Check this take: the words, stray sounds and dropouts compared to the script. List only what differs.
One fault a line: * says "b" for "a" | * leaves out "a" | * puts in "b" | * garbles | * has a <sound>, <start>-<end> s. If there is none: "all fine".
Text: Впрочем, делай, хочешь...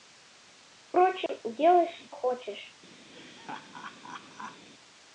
* has a dropout, 1.3-1.3 s
* has a laugh, 3.1-4.7 s